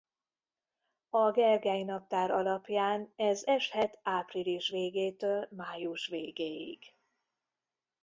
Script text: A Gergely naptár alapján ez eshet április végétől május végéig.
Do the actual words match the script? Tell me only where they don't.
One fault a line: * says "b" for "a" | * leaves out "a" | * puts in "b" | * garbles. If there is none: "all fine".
all fine